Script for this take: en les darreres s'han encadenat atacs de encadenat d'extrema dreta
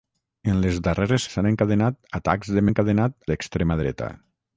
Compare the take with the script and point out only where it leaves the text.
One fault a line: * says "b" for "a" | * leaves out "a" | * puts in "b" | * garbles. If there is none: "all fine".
all fine